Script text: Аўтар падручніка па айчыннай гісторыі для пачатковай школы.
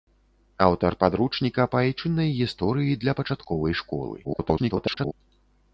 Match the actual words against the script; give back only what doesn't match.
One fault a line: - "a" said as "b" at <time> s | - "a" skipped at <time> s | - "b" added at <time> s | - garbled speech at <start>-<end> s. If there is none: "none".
- garbled speech at 4.2-5.1 s